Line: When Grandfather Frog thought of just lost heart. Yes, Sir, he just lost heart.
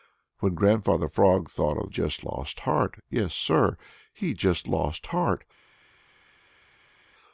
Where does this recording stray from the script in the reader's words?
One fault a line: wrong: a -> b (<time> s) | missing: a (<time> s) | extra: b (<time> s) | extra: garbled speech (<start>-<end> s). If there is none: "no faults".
no faults